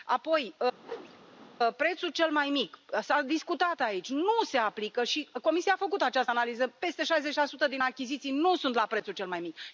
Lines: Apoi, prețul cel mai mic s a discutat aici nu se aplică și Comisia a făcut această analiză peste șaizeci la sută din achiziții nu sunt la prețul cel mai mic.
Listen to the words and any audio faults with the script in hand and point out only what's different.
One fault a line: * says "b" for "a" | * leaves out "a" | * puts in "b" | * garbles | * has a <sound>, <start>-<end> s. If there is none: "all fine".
* has a whoosh, 0.8-1.6 s